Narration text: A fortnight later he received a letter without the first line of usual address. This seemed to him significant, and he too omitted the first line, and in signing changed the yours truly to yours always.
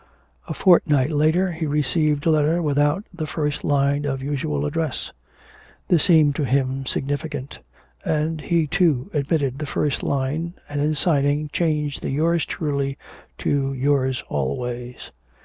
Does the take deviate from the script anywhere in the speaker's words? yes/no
no